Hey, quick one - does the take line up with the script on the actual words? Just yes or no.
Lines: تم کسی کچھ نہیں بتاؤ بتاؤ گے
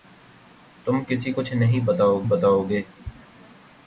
yes